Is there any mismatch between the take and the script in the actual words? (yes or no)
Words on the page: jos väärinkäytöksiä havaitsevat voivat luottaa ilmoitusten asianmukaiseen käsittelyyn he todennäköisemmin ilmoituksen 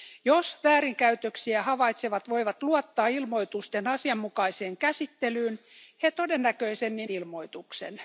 no